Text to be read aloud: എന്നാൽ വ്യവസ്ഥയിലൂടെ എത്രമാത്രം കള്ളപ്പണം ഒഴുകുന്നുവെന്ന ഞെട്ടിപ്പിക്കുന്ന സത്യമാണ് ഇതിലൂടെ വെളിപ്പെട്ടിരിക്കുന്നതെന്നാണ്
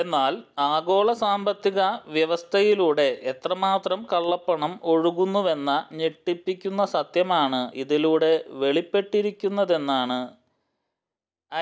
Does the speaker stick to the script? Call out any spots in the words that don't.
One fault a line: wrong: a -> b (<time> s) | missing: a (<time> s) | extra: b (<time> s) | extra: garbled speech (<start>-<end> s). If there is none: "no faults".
extra: ആഗോള സാമ്പത്തിക (0.7 s)